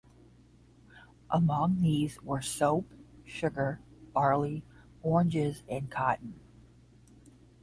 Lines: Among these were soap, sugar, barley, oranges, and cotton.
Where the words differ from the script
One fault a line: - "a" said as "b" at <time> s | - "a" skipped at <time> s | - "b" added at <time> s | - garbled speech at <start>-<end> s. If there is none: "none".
none